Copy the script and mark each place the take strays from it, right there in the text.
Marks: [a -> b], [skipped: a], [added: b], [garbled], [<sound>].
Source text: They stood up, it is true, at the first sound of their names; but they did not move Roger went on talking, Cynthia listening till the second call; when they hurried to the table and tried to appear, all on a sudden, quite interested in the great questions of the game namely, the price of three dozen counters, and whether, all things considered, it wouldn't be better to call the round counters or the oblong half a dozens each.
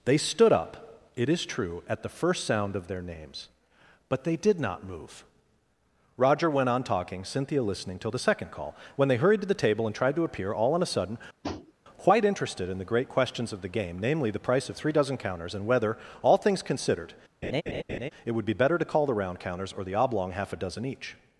They stood up, it is true, at the first sound of their names; but they did not move Roger went on talking, Cynthia listening till the second call; when they hurried to the table and tried to appear, all on a sudden, [tap] quite interested in the great questions of the game namely, the price of three dozen counters, and whether, all things considered, [laugh] it [wouldn't -> would] be better to call the round counters or the oblong half a [dozens -> dozen] each.